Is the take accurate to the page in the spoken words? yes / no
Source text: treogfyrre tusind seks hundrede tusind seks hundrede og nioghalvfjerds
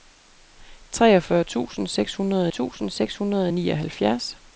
yes